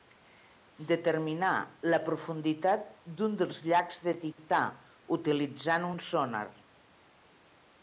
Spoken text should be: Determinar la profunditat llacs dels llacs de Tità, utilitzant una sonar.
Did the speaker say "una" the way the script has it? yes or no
no